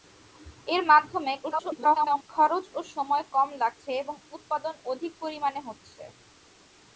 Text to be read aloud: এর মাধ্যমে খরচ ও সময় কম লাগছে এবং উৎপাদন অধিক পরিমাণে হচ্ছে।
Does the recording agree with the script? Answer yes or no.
no